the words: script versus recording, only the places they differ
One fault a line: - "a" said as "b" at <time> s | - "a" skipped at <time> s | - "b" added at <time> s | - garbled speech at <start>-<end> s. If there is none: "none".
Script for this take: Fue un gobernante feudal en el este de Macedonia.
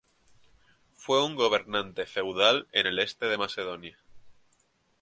none